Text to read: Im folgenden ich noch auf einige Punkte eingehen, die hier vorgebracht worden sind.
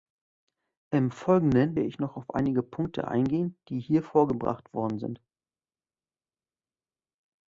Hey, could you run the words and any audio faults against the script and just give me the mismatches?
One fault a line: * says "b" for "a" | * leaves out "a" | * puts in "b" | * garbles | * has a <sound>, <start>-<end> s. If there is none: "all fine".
all fine